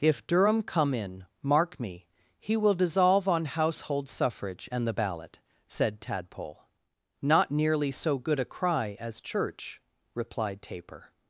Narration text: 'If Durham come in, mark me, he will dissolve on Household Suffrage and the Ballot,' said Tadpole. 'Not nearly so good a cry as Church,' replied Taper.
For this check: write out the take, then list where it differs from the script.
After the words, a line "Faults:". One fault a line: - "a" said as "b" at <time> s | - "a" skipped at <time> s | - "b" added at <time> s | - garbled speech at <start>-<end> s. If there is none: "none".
'If Durham come in, mark me, he will dissolve on Household Suffrage and the Ballot,' said Tadpole. 'Not nearly so good a cry as Church,' replied Taper.
Faults:
none